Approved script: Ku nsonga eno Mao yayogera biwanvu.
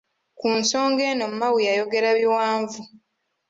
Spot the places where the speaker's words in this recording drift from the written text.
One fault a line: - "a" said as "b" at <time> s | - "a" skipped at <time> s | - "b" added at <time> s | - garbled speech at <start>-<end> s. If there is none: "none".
none